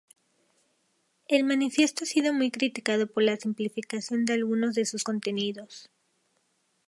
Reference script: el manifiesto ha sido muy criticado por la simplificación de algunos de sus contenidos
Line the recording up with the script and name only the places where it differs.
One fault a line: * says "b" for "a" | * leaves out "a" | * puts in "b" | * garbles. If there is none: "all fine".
all fine